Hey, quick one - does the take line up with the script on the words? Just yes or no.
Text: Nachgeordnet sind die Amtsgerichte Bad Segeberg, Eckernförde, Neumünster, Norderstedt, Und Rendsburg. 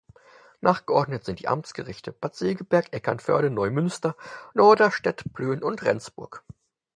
no